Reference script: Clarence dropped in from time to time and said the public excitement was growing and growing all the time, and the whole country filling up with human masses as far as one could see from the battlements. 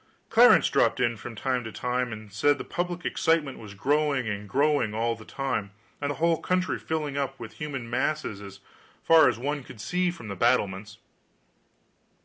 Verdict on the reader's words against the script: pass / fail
pass